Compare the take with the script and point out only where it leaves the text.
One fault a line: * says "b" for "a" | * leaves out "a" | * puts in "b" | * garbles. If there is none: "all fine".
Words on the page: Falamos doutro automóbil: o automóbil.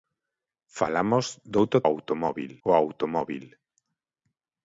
all fine